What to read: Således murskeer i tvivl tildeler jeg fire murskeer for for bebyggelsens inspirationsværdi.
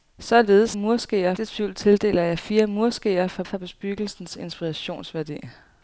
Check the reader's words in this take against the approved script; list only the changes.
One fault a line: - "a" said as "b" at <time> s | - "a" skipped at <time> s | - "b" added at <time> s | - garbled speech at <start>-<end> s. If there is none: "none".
none